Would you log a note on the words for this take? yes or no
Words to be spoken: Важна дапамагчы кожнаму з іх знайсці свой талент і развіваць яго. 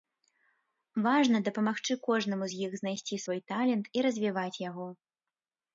no